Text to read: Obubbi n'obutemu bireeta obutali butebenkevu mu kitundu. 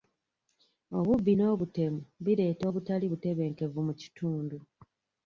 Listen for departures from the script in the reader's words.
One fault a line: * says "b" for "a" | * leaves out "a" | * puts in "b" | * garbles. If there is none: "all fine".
all fine